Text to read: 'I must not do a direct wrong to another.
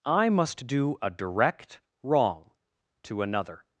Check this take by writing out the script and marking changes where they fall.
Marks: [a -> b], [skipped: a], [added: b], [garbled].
'I must [skipped: not] do a direct wrong to another.